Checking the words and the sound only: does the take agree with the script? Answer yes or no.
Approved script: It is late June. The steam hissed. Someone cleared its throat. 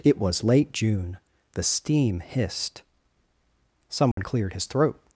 no